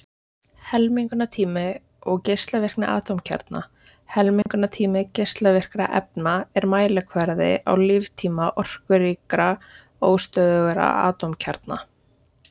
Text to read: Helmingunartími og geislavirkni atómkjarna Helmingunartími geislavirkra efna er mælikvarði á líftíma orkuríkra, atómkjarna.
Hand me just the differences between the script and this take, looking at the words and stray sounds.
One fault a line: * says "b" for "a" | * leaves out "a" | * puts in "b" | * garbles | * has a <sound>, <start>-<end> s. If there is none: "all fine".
* has a dropout, 4.4-4.5 s
* puts in "óstöðugra"